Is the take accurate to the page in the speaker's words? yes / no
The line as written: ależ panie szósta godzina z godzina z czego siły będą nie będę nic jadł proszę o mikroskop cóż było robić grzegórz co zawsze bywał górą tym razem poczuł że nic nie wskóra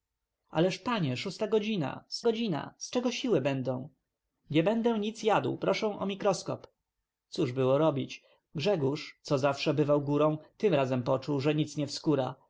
yes